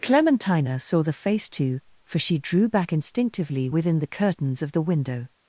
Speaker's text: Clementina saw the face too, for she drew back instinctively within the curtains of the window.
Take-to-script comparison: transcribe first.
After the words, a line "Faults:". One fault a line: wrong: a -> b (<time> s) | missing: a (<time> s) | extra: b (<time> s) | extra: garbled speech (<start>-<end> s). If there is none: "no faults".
Clementina saw the face too, for she drew back instinctively within the curtains of the window.
Faults:
no faults